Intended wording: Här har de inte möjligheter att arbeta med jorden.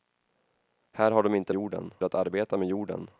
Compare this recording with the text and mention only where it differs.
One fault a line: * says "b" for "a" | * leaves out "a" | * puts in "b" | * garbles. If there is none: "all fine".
* says "jorden" for "möjligheter"